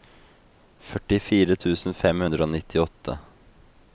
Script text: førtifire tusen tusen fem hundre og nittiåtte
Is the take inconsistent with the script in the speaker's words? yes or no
yes